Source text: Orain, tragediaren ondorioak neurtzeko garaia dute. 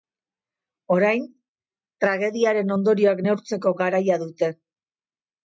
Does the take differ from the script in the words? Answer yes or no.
no